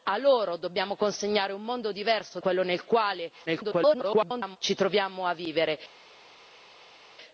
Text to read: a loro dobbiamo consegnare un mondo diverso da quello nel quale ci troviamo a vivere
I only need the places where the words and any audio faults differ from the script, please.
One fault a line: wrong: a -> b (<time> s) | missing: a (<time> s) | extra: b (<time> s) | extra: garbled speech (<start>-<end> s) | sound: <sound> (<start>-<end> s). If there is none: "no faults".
missing: da (2.4 s)
extra: garbled speech (3.5-4.6 s)